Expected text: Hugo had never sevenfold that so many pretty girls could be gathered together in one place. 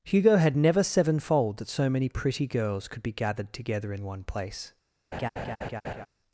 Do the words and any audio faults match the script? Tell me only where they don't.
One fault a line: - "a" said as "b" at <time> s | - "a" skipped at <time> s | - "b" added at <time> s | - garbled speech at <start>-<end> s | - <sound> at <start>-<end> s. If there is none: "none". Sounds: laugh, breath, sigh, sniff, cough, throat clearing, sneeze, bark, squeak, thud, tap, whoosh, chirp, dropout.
- laugh at 5.1-6.1 s